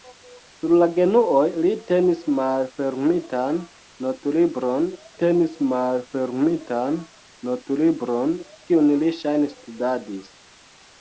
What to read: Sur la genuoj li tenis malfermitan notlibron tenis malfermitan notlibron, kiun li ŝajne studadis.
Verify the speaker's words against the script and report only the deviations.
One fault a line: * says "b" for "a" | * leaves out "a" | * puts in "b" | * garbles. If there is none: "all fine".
all fine